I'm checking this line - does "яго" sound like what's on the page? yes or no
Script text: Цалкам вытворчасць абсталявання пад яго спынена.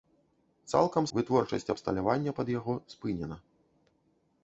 yes